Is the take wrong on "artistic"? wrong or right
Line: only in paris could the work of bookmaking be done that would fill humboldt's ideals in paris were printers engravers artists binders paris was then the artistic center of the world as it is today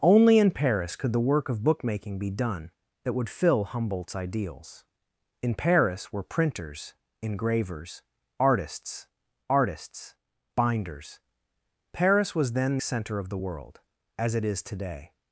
wrong